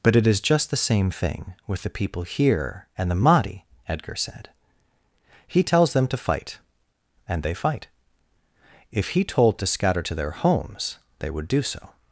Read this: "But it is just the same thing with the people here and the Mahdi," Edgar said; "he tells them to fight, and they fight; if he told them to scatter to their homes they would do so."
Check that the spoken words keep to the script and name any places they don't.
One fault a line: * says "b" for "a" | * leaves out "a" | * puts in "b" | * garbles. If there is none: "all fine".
* leaves out "them"